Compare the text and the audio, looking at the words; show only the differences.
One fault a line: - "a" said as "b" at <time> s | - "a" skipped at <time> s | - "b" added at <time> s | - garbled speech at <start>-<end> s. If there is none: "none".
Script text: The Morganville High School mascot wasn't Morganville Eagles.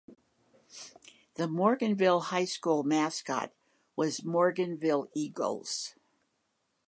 - "wasn't" said as "was" at 4.0 s